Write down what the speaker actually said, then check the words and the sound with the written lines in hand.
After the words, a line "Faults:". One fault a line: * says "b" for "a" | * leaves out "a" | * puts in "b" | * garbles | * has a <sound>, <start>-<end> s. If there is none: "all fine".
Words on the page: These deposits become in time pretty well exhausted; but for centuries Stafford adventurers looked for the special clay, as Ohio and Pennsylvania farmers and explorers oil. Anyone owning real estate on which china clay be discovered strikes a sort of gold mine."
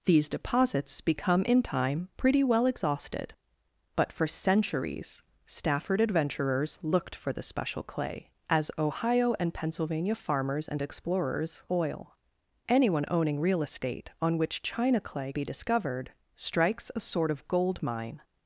These deposits become in time pretty well exhausted; but for centuries Stafford adventurers looked for the special clay, as Ohio and Pennsylvania farmers and explorers oil. Anyone owning real estate on which china clay be discovered strikes a sort of gold mine."
Faults:
all fine